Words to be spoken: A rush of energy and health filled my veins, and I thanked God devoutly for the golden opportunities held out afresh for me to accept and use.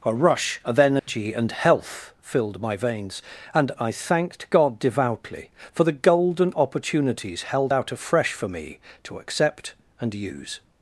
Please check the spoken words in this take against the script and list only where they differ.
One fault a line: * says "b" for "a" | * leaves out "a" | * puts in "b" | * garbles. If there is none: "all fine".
all fine